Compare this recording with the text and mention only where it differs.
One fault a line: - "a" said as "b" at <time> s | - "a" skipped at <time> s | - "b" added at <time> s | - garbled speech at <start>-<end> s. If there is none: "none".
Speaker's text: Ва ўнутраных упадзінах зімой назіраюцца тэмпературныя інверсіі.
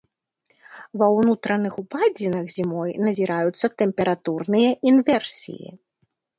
none